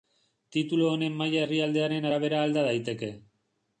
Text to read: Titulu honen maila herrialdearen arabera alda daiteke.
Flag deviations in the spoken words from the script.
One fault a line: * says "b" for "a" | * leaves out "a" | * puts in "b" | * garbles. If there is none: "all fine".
all fine